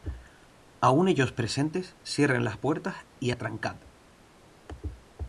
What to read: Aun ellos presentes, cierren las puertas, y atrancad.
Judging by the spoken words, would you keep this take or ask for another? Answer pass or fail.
pass